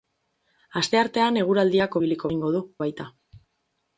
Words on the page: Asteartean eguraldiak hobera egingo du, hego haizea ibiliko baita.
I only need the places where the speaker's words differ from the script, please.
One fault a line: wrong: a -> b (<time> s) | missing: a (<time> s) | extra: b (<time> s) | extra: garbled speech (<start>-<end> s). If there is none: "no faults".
wrong: hobera -> ibiliko (2.0 s)
missing: hego haizea ibiliko (2.6 s)